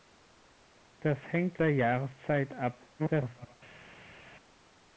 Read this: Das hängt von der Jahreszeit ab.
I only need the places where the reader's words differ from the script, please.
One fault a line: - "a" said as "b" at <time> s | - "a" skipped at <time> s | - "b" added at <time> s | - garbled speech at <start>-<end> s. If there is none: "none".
- "von" skipped at 1.6 s
- garbled speech at 3.0-3.5 s